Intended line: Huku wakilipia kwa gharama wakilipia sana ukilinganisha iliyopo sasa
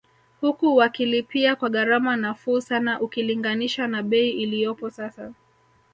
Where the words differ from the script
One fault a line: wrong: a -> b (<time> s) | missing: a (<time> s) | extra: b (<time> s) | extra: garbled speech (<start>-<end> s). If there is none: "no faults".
wrong: wakilipia -> nafuu (2.2 s)
extra: na bei (3.9 s)